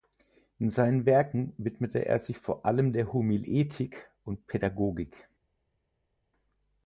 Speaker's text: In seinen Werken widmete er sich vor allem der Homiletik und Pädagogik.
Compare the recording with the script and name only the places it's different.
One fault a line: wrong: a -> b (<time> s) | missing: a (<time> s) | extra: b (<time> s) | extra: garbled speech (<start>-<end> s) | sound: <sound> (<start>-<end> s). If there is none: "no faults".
no faults